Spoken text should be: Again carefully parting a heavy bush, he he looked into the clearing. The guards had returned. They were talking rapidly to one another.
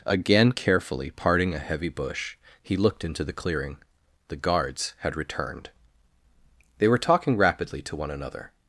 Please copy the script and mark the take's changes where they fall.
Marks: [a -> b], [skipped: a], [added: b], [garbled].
Again carefully parting a heavy bush, he [skipped: he] looked into the clearing. The guards had returned. They were talking rapidly to one another.